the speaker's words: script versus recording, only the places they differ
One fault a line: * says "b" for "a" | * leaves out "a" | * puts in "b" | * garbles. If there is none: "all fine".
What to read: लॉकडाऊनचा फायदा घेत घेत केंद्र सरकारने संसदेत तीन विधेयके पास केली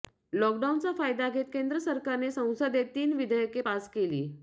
* leaves out "घेत"